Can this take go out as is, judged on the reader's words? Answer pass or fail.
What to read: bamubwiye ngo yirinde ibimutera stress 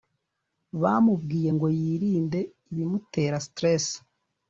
pass